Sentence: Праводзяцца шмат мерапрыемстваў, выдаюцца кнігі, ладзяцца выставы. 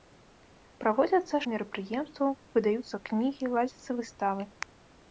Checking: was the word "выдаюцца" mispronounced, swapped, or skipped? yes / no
no